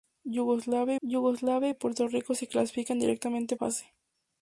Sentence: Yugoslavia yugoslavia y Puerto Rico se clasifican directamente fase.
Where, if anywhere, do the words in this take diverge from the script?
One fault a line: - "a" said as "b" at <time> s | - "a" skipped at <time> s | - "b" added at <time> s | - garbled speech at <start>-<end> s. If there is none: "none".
none